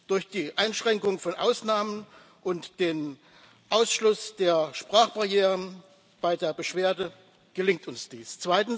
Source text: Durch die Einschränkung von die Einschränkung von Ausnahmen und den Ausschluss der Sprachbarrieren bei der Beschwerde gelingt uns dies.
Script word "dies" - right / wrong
right